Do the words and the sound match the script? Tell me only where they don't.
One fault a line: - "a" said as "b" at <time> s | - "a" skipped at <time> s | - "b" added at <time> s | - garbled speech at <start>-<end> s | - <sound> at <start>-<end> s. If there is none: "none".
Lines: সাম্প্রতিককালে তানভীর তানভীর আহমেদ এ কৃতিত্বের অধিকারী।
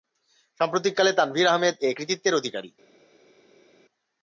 - "তানভীর" skipped at 1.5 s